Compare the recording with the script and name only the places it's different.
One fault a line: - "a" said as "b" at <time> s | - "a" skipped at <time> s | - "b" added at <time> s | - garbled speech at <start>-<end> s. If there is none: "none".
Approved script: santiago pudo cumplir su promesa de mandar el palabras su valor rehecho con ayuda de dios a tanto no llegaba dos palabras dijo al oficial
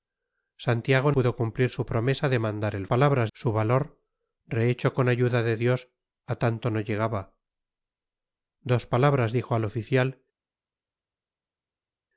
none